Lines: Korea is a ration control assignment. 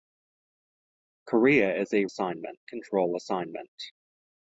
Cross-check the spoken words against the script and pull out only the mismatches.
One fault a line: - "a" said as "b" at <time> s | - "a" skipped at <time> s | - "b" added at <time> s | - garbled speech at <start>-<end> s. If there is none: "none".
- "ration" said as "assignment" at 2.1 s